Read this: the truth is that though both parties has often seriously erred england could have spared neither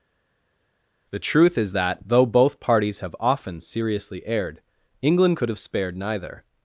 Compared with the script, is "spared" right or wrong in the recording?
right